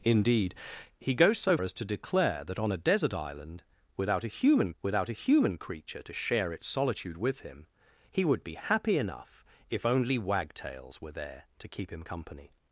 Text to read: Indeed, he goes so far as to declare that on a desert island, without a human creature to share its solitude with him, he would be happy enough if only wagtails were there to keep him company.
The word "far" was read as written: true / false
false